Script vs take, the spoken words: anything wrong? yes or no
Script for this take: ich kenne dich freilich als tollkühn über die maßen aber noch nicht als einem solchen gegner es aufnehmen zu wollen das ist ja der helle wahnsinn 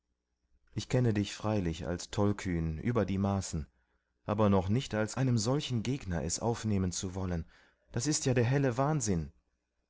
no